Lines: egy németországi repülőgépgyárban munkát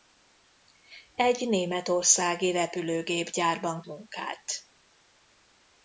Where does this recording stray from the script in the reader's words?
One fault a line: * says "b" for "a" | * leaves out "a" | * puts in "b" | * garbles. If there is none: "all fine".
all fine